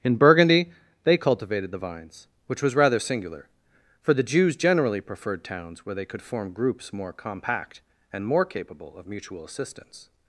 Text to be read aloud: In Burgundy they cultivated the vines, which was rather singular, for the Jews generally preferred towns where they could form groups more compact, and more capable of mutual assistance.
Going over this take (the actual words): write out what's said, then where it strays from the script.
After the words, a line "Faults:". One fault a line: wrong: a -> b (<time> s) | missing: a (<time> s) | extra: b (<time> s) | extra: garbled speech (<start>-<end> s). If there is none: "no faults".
In Burgundy they cultivated the vines, which was rather singular, for the Jews generally preferred towns where they could form groups more compact, and more capable of mutual assistance.
Faults:
no faults